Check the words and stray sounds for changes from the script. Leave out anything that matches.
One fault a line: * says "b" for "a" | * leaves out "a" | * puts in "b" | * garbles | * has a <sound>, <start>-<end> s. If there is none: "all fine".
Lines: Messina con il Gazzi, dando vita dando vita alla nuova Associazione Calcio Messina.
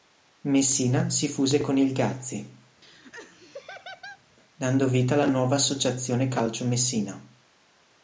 * puts in "si fuse"
* has a laugh, 2.8-4.2 s
* leaves out "dando vita"